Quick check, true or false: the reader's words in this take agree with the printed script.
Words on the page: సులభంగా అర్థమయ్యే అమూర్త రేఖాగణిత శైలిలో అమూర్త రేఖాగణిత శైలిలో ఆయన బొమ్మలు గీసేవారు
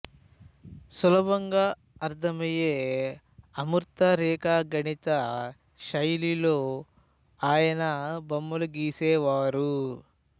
false